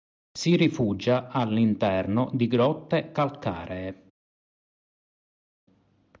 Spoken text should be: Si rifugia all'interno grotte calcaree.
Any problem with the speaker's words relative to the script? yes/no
yes